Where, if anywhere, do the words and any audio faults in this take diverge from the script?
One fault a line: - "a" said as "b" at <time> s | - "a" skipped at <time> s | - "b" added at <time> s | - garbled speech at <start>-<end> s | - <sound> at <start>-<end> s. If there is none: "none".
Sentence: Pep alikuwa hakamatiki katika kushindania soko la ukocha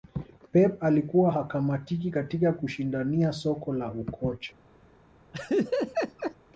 - laugh at 5.3-6.3 s